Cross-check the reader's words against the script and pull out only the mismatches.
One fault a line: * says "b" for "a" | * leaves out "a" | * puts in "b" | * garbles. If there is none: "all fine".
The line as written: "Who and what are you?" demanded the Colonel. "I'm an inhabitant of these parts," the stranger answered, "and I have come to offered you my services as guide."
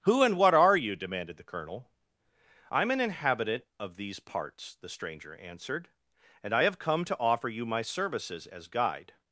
* says "offer" for "offered"